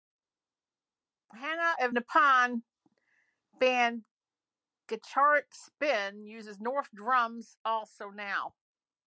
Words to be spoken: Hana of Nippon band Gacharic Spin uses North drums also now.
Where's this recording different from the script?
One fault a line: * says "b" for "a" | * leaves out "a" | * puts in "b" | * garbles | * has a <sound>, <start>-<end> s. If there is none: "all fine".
all fine